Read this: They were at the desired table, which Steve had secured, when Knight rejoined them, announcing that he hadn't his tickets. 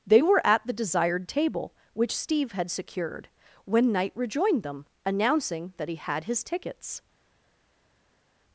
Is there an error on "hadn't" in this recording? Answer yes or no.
yes